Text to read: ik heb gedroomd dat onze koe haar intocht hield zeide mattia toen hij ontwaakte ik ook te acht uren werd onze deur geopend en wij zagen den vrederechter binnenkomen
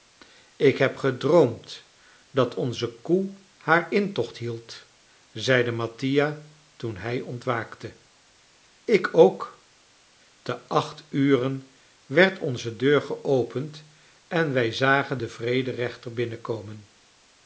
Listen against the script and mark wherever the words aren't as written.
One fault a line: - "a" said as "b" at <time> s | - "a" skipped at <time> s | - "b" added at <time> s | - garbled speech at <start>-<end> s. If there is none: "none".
none